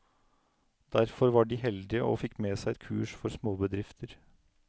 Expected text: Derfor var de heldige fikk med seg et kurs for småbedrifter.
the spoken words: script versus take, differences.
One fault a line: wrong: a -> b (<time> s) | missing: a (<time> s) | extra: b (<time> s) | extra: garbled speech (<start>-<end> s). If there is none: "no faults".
extra: og (2.0 s)